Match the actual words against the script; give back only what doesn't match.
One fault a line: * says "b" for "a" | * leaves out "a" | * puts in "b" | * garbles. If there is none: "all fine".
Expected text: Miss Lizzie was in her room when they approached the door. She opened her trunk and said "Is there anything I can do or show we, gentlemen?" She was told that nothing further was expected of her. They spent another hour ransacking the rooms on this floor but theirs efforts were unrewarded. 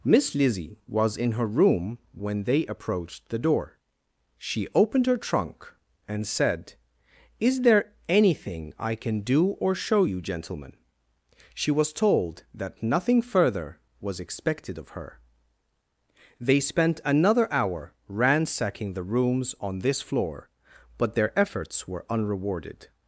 * says "you" for "we"
* says "their" for "theirs"